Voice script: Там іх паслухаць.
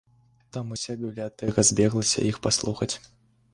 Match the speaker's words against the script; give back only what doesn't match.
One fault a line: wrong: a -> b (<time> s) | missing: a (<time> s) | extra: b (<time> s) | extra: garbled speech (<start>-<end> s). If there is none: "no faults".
extra: уся бібліятэка збеглася (0.7 s)